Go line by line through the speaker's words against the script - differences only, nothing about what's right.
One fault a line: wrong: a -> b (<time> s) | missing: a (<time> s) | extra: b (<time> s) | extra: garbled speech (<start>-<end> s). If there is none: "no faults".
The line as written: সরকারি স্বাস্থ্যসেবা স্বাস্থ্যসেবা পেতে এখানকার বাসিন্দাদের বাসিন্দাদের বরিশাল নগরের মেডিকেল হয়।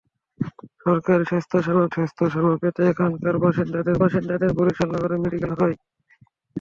no faults